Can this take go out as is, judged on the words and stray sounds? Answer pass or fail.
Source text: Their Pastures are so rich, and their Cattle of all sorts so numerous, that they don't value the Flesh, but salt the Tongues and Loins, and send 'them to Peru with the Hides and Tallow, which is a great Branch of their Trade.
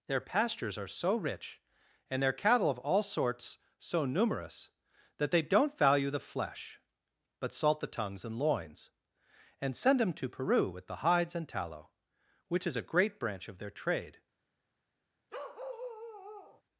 fail